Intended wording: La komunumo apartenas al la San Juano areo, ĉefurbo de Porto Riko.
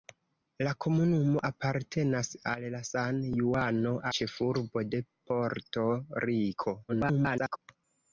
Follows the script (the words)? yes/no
no